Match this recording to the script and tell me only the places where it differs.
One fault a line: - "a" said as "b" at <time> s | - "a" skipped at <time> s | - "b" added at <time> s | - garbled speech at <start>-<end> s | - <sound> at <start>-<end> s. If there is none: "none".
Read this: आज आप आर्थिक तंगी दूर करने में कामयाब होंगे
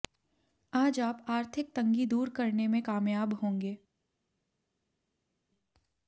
none